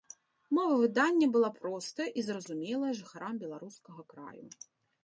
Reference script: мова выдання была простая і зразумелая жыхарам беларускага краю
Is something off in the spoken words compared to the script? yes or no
no